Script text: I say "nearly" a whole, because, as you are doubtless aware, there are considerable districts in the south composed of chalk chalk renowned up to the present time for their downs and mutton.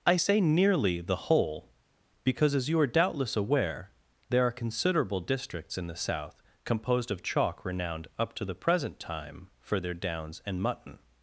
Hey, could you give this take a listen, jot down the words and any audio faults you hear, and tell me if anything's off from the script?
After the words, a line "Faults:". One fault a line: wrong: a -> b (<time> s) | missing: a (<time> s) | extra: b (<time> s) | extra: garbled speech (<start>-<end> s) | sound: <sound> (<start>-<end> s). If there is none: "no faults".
I say "nearly" the whole, because, as you are doubtless aware, there are considerable districts in the south composed of chalk renowned up to the present time for their downs and mutton.
Faults:
wrong: a -> the (1.0 s)
missing: chalk (7.6 s)